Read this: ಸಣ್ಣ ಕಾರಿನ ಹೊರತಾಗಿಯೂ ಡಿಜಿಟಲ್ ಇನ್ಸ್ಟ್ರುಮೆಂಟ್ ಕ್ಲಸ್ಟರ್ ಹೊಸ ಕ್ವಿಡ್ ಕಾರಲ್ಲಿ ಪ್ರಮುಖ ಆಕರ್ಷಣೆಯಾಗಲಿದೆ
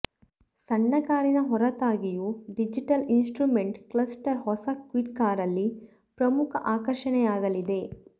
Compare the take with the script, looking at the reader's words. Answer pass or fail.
pass